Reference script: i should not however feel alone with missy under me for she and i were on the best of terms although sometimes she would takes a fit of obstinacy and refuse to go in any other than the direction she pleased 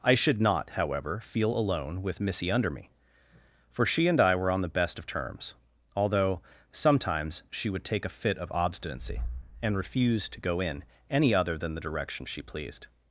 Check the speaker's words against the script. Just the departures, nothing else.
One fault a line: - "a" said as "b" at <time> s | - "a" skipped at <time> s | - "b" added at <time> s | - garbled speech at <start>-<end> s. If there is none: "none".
- "takes" said as "take" at 7.8 s